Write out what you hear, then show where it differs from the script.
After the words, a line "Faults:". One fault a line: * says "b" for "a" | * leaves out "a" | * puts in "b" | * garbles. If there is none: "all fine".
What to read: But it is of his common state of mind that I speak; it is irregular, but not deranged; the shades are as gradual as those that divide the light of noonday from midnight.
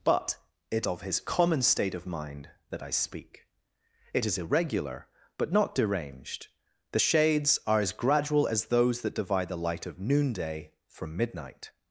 But it of his common state of mind that I speak; it is irregular, but not deranged; the shades are as gradual as those that divide the light of noonday from midnight.
Faults:
* leaves out "is"